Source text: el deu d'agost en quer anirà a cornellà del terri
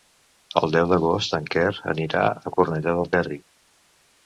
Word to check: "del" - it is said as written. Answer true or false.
true